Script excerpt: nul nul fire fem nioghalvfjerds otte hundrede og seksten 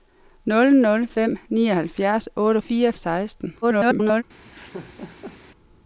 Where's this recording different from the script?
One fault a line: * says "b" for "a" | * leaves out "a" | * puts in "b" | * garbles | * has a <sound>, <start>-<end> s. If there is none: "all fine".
* leaves out "fire"
* says "fire" for "hundrede"
* garbles
* has a laugh, 4.4-5.4 s